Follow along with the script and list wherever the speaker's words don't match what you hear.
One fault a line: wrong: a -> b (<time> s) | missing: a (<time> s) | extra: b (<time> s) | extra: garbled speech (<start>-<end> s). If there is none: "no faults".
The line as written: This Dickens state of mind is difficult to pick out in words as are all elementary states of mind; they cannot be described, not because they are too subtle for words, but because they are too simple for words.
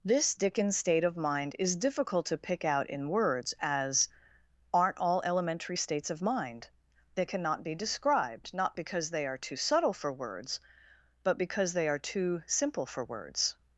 wrong: are -> aren't (4.7 s)